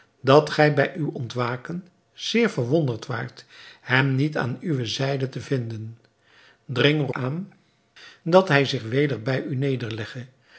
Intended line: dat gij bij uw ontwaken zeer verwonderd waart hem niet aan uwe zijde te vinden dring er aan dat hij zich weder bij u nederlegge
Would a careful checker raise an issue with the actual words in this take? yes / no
no